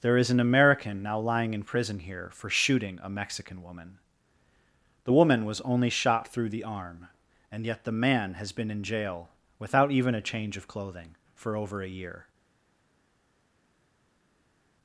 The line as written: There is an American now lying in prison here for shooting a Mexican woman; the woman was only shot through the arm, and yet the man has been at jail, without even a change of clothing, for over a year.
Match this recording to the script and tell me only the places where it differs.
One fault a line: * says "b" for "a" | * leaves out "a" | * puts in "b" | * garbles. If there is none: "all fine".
* says "in" for "at"